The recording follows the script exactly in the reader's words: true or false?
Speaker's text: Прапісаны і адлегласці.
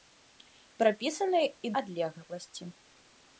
true